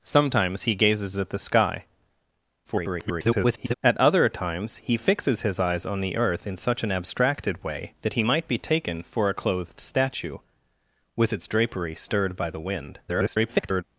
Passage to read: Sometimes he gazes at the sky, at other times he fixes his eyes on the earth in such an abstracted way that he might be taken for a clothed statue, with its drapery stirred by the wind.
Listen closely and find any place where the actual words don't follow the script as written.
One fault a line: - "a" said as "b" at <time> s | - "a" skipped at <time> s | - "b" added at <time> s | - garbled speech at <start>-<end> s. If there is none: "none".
- garbled speech at 2.6-3.7 s
- garbled speech at 13.1-13.8 s